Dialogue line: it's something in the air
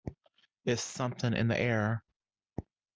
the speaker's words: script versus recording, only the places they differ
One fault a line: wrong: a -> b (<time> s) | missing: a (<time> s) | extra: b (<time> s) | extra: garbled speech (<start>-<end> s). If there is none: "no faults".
no faults